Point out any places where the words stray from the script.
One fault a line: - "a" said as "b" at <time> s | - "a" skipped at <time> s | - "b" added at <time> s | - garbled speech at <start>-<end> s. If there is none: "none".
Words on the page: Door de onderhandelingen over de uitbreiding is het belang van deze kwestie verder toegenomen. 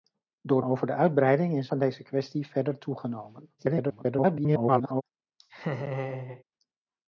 - "de onderhandelingen" skipped at 0.6 s
- "het belang" skipped at 1.7 s
- garbled speech at 3.6-5.0 s